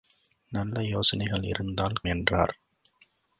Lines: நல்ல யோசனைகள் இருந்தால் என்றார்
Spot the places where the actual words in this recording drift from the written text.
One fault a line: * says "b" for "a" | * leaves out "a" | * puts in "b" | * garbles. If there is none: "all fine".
all fine